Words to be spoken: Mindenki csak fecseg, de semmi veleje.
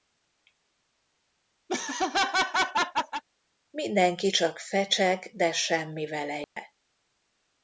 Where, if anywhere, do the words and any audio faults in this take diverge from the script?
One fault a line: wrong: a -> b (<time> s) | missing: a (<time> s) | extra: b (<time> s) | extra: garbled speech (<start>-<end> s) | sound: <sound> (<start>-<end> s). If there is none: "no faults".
sound: laugh (1.7-3.2 s)
sound: dropout (6.4-6.6 s)